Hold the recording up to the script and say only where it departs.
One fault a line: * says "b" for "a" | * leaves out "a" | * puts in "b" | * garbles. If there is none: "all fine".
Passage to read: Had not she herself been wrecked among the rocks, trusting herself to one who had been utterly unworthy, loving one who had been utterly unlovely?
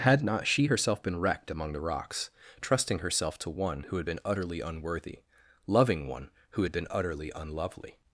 all fine